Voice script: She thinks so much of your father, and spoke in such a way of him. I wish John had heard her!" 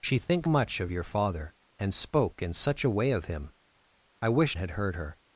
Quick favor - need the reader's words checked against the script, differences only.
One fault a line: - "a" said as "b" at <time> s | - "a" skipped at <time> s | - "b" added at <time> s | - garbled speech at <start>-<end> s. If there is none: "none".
- "so" skipped at 0.5 s
- "John" skipped at 4.6 s